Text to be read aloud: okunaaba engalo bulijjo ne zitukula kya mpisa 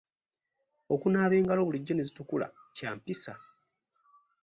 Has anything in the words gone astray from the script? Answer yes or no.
no